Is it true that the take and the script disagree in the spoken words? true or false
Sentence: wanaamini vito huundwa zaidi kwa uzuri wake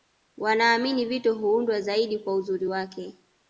false